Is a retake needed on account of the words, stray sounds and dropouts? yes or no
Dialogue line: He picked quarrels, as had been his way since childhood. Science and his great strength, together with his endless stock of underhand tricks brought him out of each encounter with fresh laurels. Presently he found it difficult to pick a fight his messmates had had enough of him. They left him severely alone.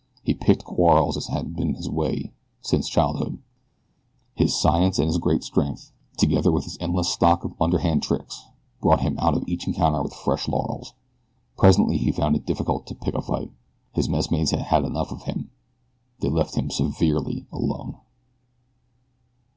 yes